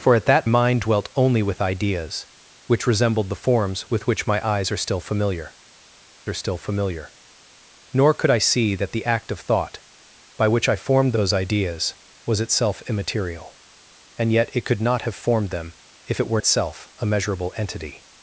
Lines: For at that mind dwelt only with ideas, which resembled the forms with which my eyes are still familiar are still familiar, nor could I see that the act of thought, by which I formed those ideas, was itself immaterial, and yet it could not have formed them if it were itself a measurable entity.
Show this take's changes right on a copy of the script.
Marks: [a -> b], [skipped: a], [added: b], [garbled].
For at that mind dwelt only with ideas, which resembled the forms with which my eyes are still familiar are still familiar, nor could I see that the act of thought, by which I formed those ideas, was itself immaterial, and yet it could not have formed them if it were itself a measurable entity.